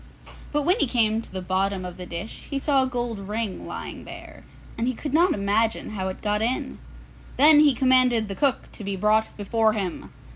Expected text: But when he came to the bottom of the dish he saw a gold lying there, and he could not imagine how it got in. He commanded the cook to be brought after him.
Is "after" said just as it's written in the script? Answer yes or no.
no